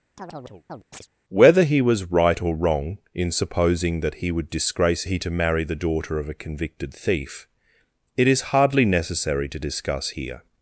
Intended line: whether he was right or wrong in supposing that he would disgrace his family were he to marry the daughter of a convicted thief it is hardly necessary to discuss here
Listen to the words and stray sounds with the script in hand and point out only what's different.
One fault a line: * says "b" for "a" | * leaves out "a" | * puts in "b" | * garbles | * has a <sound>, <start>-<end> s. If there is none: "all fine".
* has a chirp, 0.2-1.1 s
* leaves out "his family were"